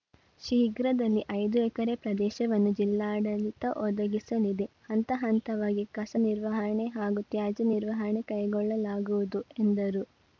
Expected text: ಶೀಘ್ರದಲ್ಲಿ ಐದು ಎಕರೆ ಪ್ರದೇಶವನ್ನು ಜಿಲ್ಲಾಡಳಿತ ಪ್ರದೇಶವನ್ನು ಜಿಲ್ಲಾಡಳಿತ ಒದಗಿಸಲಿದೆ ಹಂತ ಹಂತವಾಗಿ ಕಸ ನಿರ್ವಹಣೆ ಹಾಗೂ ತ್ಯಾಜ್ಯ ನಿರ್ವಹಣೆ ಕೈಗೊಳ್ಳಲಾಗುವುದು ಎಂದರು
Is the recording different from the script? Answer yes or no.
yes